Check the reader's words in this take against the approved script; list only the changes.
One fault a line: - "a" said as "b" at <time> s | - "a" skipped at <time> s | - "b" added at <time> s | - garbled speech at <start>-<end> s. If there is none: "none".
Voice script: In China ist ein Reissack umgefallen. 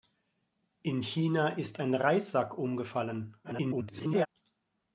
- garbled speech at 3.4-4.3 s